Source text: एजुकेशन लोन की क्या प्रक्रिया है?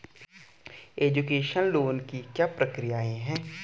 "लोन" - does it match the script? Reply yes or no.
yes